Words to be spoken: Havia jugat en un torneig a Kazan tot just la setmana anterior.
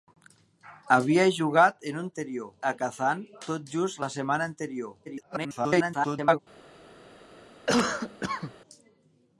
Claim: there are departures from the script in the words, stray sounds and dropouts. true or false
true